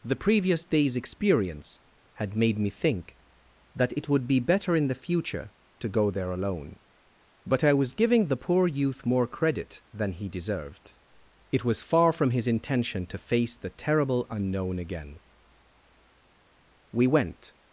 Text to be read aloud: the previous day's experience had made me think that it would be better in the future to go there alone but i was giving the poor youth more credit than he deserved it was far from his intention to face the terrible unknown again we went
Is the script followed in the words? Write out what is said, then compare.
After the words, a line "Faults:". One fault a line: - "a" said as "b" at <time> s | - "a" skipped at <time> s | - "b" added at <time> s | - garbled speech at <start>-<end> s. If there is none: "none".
the previous day's experience had made me think that it would be better in the future to go there alone but i was giving the poor youth more credit than he deserved it was far from his intention to face the terrible unknown again we went
Faults:
none